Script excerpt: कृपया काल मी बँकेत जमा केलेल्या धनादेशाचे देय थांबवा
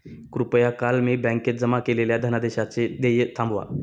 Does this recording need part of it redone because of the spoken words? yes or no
no